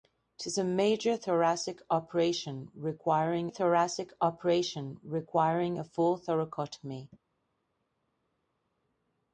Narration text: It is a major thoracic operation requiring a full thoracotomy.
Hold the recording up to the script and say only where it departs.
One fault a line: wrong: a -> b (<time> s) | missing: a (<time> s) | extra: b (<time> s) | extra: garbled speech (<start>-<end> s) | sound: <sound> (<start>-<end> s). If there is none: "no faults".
extra: thoracic operation requiring (3.5 s)